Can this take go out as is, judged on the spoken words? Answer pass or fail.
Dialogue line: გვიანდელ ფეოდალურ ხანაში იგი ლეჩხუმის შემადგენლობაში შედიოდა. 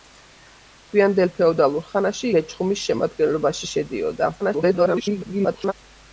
fail